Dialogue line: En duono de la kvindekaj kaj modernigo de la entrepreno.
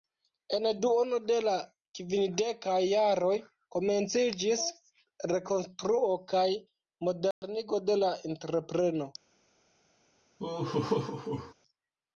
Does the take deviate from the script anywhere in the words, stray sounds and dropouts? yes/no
yes